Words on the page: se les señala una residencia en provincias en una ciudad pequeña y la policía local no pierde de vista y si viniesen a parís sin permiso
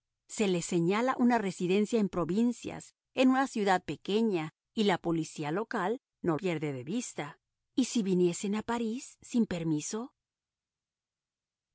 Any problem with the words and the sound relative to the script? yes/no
no